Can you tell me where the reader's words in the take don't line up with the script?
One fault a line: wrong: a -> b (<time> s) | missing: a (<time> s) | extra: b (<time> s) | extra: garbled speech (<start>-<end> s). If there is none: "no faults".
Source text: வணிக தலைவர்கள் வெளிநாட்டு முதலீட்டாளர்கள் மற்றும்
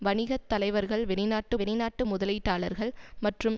extra: வெளிநாட்டு (1.6 s)